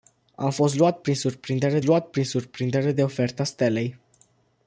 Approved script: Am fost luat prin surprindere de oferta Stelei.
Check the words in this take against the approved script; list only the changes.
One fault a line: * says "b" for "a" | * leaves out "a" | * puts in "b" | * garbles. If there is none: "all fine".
* puts in "luat prin surprindere"